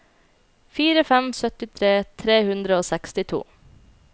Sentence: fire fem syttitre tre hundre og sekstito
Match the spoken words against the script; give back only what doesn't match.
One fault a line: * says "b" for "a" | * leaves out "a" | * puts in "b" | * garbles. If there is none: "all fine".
all fine